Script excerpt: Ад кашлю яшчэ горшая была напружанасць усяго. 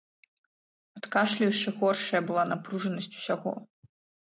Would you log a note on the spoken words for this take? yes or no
no